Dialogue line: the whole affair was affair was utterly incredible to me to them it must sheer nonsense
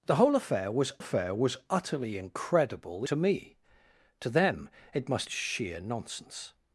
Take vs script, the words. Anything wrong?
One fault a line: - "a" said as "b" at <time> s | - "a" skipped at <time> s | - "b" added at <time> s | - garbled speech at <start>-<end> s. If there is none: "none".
none